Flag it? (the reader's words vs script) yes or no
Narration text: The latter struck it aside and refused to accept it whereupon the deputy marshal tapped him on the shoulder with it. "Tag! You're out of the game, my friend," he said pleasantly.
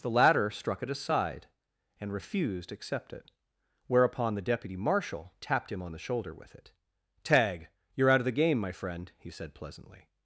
yes